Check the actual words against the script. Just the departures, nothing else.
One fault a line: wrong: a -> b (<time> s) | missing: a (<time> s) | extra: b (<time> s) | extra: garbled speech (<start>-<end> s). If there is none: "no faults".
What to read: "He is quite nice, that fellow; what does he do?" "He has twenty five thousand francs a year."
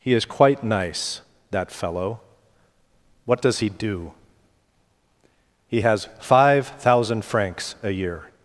missing: twenty (6.1 s)